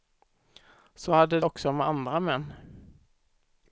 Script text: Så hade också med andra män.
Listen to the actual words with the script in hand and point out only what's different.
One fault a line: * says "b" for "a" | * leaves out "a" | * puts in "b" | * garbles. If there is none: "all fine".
all fine